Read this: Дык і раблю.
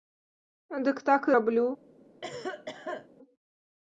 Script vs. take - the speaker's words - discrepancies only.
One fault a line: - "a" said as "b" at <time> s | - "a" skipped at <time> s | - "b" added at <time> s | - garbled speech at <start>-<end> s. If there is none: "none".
- "так" added at 1.1 s